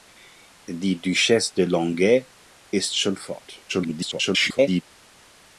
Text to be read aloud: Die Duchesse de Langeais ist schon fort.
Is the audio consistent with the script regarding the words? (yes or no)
no